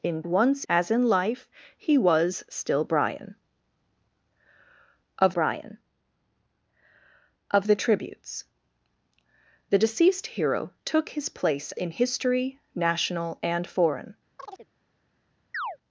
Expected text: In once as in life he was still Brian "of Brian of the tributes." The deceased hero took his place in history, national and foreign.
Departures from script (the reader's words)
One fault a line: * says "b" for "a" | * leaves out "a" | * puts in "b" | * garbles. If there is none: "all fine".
all fine